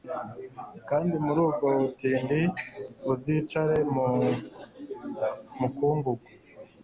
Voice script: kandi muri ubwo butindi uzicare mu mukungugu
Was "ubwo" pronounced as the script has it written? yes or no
yes